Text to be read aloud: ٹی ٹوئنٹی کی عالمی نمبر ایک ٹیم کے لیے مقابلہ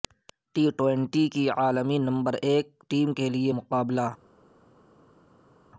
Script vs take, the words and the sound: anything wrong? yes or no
no